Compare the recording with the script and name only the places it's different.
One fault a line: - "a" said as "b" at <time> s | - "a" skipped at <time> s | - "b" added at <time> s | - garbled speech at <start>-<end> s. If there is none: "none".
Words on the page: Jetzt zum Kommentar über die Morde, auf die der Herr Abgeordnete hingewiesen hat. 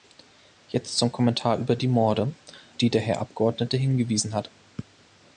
- "auf" skipped at 2.3 s